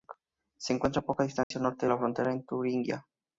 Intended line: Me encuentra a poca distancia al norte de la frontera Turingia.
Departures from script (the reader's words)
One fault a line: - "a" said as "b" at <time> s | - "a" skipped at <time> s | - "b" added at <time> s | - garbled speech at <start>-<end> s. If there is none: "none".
- "Me" said as "Se" at 0.6 s
- "con" added at 2.3 s